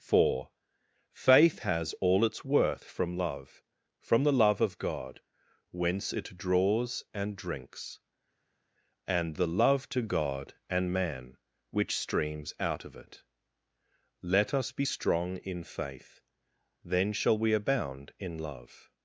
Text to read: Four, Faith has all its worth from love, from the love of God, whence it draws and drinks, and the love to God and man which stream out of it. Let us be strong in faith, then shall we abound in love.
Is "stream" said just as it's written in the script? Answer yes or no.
no